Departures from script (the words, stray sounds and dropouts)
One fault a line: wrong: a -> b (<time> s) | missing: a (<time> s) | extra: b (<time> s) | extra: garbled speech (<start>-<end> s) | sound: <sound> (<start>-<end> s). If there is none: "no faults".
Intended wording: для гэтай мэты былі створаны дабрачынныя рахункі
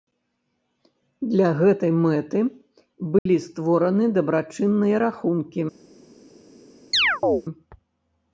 sound: dropout (3.2-3.3 s)
sound: chirp (6.9-7.4 s)